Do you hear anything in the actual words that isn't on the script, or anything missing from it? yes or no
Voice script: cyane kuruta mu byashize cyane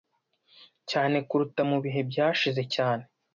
yes